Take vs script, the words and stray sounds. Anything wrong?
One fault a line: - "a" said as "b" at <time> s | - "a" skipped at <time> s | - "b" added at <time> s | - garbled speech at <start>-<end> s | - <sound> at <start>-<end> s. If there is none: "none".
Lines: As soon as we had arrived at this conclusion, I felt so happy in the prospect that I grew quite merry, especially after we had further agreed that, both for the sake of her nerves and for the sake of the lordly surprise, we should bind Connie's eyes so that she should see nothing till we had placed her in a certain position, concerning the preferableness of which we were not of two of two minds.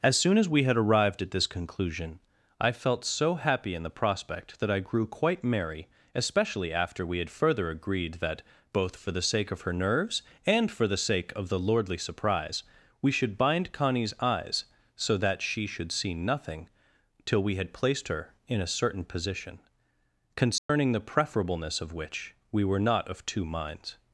- dropout at 20.6-20.7 s
- "of two" skipped at 23.4 s